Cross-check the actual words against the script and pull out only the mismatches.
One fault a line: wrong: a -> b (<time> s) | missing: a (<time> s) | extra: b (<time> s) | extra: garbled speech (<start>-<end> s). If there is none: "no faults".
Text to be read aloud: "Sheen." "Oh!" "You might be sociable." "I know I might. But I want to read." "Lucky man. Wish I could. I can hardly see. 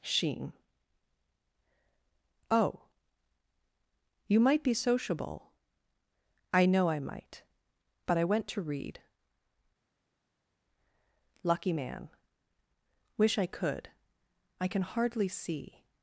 wrong: want -> went (8.2 s)